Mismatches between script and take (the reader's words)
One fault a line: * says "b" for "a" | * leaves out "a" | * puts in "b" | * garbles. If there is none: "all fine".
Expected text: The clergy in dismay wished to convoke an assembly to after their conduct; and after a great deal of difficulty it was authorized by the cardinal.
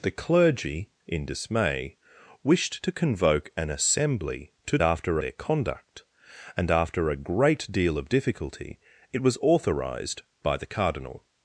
all fine